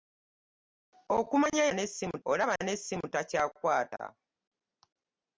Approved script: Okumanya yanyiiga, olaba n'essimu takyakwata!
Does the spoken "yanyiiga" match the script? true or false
false